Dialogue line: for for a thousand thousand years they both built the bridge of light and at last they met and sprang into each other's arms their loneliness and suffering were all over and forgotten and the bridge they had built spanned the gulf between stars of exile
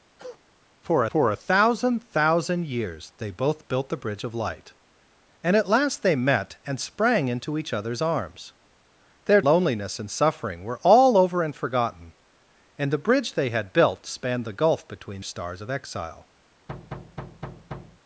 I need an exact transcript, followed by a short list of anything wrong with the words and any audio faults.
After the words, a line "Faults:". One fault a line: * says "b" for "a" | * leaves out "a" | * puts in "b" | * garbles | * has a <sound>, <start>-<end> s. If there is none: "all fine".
for for a thousand thousand years they both built the bridge of light and at last they met and sprang into each other's arms their loneliness and suffering were all over and forgotten and the bridge they had built spanned the gulf between stars of exile
Faults:
* has a cough, 0.2-0.4 s
* has a thud, 16.7-18.0 s